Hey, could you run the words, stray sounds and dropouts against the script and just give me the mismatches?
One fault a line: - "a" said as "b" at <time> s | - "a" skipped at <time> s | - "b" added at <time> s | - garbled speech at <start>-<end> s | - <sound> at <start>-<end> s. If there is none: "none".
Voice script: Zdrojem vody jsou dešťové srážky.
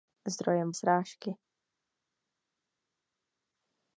- "vody jsou dešťové" skipped at 0.7 s